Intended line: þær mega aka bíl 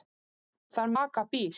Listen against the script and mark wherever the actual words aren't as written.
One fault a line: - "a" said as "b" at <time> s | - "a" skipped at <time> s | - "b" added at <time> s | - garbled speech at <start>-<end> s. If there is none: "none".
- "mega" skipped at 0.9 s